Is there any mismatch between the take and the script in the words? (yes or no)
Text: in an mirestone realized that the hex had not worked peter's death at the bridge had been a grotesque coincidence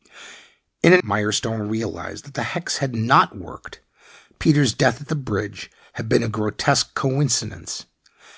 no